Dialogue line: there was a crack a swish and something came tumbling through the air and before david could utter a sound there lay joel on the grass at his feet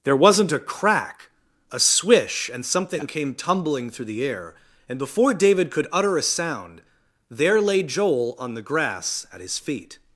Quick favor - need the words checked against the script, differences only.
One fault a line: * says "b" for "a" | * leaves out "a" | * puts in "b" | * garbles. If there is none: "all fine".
* says "wasn't" for "was"